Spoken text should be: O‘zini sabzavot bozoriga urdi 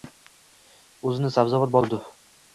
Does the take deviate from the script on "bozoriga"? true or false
true